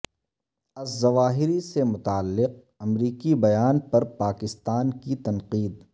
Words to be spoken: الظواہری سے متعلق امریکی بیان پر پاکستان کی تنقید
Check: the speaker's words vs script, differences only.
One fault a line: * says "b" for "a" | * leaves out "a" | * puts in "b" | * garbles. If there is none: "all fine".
all fine